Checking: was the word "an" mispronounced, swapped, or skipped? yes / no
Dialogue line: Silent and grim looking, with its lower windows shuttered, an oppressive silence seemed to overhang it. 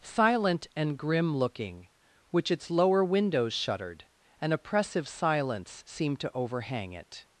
no